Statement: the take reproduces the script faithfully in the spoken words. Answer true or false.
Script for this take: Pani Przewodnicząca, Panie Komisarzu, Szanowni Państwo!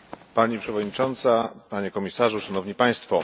true